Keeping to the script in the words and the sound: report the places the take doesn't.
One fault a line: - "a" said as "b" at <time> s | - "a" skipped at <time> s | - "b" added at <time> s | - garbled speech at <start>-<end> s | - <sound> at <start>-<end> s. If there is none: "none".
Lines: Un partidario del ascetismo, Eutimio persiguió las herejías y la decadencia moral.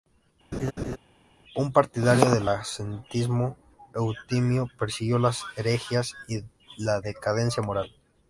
- laugh at 0.5-1.0 s